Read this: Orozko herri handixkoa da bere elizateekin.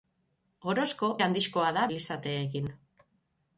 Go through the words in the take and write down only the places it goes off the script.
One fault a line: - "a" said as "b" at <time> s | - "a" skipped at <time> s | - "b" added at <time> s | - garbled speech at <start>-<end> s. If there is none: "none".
- "herri" skipped at 1.1 s
- "bere" skipped at 1.8 s